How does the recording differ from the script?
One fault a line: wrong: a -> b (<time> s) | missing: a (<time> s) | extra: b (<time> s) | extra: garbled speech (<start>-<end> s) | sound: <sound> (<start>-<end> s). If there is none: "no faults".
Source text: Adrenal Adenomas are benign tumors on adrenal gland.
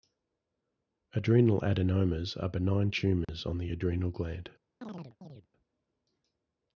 sound: dropout (3.2-3.3 s)
extra: the (3.6 s)
sound: chirp (4.8-5.5 s)